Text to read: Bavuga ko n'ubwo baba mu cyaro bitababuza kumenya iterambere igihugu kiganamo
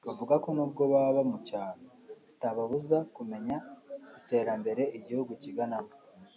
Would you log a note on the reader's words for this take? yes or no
no